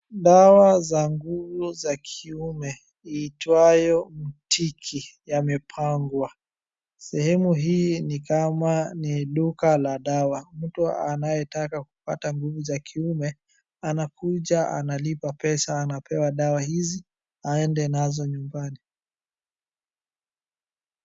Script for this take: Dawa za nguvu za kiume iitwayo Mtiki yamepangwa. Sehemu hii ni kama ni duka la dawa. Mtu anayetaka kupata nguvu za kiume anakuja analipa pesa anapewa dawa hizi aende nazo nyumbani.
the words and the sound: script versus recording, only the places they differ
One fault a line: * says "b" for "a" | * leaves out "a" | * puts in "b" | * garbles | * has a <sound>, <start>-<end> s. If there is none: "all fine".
all fine